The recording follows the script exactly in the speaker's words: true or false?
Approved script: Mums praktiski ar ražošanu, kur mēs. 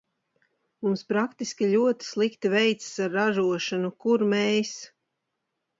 false